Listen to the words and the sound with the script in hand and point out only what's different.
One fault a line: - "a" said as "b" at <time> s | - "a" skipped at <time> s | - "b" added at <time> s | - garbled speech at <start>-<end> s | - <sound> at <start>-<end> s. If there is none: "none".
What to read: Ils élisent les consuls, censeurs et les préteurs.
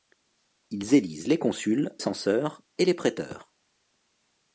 none